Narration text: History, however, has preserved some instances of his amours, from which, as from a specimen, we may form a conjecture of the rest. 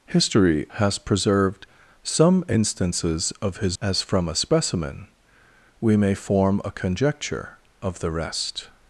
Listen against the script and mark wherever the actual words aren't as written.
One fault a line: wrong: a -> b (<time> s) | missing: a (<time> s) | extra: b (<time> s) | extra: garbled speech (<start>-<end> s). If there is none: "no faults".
missing: however (0.7 s)
missing: amours from which (3.8 s)